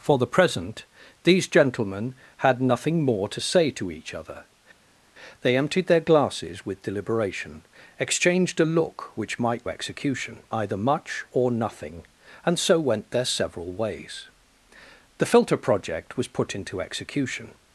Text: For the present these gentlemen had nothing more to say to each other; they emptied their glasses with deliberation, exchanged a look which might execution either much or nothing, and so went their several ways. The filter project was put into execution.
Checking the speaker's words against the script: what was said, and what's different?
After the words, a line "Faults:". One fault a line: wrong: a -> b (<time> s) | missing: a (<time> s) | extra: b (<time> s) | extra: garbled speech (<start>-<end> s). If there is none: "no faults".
For the present these gentlemen had nothing more to say to each other; they emptied their glasses with deliberation, exchanged a look which might execution either much or nothing, and so went their several ways. The filter project was put into execution.
Faults:
no faults